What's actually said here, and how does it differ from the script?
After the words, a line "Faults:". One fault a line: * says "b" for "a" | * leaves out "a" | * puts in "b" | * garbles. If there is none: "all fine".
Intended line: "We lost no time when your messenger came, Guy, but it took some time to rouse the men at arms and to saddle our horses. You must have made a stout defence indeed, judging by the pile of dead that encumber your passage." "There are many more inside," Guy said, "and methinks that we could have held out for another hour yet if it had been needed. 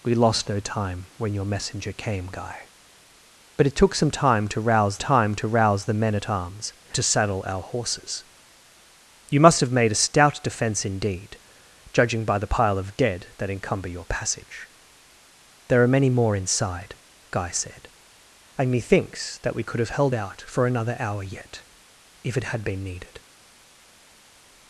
"We lost no time when your messenger came, Guy, but it took some time to rouse time to rouse the men at arms to saddle our horses. You must have made a stout defence indeed, judging by the pile of dead that encumber your passage." "There are many more inside," Guy said, "and methinks that we could have held out for another hour yet if it had been needed.
Faults:
* puts in "time to rouse"
* leaves out "and"